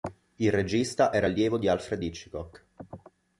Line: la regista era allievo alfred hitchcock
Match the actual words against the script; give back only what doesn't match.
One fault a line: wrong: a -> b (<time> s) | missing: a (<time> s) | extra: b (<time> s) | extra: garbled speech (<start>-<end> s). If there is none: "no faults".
wrong: la -> il (0.4 s)
extra: di (1.6 s)